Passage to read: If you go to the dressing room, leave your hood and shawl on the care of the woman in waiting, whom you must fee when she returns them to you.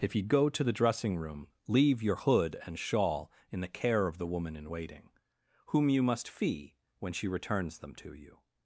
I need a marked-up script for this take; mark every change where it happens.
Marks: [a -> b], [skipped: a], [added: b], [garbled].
If you go to the dressing room, leave your hood and shawl [on -> in] the care of the woman in waiting, whom you must fee when she returns them to you.